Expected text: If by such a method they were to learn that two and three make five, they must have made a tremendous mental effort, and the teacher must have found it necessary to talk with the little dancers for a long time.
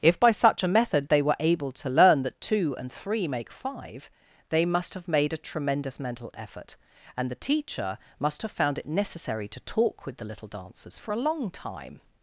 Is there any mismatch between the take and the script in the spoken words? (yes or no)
yes